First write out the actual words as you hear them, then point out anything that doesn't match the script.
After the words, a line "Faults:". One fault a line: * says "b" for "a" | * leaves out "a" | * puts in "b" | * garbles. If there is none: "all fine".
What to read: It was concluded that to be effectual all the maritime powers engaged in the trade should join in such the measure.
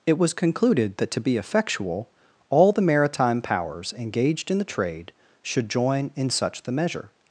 It was concluded that to be effectual all the maritime powers engaged in the trade should join in such the measure.
Faults:
all fine